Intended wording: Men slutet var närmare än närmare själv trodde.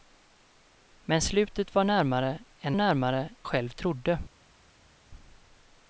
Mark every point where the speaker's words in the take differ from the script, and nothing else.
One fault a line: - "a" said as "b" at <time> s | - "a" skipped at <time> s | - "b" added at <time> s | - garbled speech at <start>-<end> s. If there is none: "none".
none